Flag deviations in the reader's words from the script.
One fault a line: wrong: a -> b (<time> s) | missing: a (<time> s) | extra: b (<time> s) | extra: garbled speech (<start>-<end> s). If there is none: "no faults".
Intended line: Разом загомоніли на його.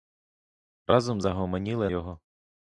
missing: на (1.9 s)